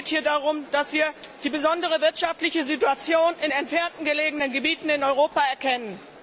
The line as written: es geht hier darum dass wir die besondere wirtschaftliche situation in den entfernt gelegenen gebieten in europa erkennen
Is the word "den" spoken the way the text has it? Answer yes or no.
no